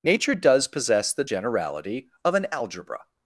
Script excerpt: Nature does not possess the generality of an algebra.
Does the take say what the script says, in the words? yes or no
no